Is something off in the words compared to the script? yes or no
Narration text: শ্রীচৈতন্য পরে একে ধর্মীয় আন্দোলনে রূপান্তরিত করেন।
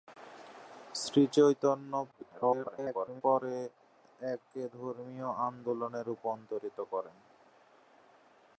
yes